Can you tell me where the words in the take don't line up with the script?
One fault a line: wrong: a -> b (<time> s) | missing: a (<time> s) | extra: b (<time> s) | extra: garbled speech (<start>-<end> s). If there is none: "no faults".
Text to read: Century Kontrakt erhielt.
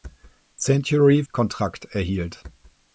no faults